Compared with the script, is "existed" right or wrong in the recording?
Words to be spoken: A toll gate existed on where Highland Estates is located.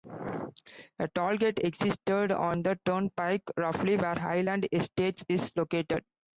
right